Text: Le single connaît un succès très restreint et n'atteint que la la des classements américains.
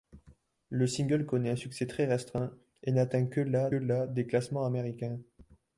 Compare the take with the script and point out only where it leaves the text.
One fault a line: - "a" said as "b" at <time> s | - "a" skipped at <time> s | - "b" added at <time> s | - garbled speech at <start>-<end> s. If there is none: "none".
none